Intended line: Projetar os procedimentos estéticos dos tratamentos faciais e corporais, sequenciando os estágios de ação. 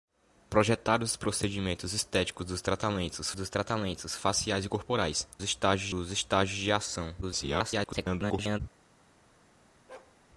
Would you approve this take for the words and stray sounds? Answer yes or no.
no